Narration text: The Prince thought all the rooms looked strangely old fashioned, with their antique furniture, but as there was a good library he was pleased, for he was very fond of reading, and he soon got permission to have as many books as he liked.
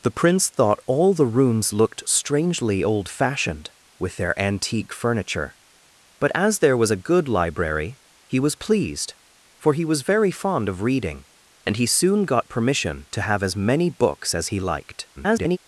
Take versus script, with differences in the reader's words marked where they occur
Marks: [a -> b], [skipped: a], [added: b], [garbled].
The Prince thought all the rooms looked strangely old fashioned, with their antique furniture, but as there was a good library he was pleased, for he was very fond of reading, and he soon got permission to have as many books as he liked. [garbled]